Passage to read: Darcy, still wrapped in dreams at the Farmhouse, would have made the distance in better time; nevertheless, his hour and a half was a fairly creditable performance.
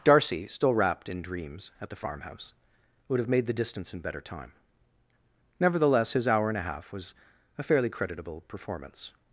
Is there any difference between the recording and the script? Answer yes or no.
no